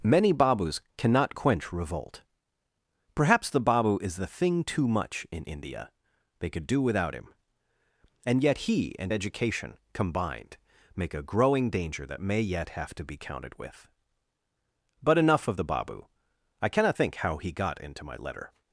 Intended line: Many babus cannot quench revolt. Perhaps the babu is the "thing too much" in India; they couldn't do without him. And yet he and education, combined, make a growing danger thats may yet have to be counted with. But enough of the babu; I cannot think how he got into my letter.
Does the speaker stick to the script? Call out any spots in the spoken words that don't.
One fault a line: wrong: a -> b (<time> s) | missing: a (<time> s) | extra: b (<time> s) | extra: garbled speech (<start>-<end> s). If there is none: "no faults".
wrong: couldn't -> could (6.5 s)
wrong: thats -> that (12.1 s)